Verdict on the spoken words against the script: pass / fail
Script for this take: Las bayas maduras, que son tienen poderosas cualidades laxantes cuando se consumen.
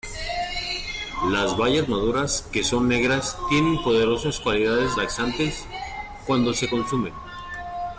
fail